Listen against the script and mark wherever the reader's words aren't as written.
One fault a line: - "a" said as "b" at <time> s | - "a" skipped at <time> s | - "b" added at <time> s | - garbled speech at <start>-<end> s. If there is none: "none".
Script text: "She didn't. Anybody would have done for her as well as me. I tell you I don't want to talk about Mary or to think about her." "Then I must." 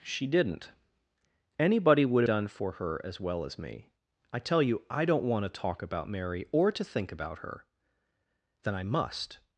- "have" skipped at 2.2 s